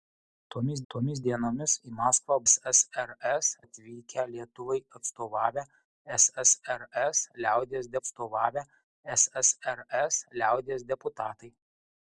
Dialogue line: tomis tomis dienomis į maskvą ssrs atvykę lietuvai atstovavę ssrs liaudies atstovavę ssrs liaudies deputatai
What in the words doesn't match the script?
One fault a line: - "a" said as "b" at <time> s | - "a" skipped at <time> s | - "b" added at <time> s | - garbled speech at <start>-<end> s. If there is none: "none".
none